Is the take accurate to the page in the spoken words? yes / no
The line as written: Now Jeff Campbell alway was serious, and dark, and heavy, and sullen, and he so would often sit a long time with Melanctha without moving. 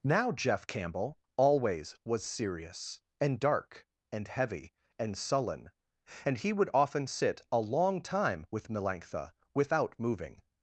no